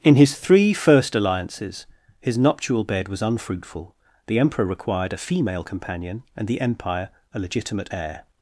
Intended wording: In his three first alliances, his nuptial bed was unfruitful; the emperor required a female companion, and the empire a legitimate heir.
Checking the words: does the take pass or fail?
pass